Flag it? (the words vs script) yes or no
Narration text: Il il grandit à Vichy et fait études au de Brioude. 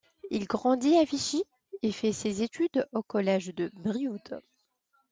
yes